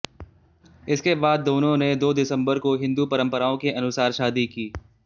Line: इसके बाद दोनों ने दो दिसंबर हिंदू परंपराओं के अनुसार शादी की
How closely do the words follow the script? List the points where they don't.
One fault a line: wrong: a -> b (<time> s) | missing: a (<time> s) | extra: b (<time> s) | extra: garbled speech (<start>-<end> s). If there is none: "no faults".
extra: को (2.6 s)